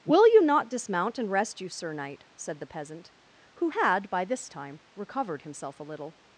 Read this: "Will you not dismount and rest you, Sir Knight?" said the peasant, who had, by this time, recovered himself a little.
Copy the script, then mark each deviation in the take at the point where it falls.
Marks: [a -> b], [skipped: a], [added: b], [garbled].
"Will you not dismount and rest you, Sir Knight?" said the peasant, who had, by this time, recovered himself a little.